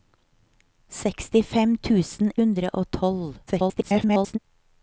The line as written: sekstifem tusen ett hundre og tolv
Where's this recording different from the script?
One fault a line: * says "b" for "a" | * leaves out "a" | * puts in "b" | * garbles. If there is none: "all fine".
* leaves out "ett"
* garbles